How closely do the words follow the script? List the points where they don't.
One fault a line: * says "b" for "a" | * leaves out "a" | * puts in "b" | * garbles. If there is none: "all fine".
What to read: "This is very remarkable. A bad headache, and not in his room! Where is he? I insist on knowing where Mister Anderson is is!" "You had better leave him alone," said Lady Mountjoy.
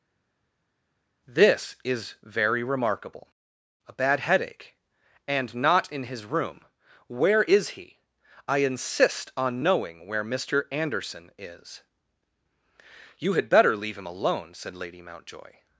* leaves out "is"